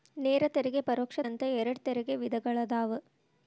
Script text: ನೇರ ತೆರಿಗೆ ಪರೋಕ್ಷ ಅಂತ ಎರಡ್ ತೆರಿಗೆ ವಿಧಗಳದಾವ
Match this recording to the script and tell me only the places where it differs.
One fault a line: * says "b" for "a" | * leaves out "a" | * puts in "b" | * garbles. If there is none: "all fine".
all fine